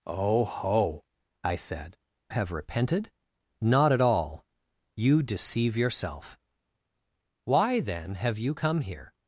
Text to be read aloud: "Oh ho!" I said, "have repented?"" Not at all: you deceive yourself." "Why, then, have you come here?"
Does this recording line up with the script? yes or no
yes